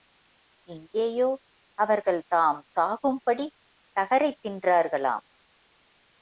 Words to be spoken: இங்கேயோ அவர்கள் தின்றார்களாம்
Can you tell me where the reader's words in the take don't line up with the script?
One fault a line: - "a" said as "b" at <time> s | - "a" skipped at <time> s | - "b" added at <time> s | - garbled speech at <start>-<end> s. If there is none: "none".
- "தாம் சாகும்படி தகரைத்" added at 2.3 s